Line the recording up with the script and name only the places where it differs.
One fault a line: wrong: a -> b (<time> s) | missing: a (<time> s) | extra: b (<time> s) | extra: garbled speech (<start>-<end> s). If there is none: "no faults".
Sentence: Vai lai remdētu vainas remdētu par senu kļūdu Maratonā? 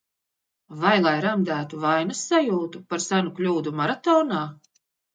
wrong: remdētu -> sajūtu (2.3 s)